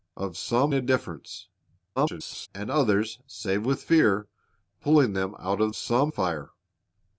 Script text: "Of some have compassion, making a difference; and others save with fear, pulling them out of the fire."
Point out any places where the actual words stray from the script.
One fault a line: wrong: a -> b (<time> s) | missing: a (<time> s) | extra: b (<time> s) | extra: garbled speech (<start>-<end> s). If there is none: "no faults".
missing: have compassion making (0.7 s)
extra: garbled speech (2.0-2.5 s)
wrong: the -> some (5.7 s)